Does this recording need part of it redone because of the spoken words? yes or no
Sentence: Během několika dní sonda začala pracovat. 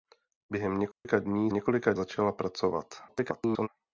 yes